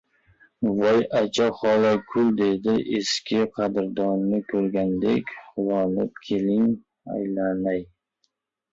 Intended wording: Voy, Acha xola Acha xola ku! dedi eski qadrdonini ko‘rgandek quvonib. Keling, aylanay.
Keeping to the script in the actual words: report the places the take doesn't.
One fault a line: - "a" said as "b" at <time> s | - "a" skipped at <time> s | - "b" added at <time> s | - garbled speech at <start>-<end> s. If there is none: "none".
- "Acha xola" skipped at 1.9 s